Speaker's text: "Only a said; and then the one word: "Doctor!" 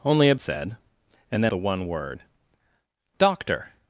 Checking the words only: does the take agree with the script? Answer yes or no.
yes